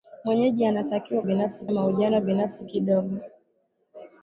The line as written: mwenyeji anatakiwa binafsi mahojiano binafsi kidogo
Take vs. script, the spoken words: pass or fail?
pass